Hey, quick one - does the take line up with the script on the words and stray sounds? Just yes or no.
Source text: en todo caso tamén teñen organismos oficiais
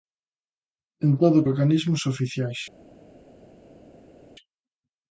no